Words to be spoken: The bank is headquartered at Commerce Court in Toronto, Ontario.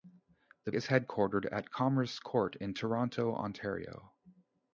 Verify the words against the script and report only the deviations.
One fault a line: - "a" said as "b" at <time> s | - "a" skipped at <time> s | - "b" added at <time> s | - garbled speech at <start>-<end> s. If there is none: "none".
- "bank" skipped at 0.7 s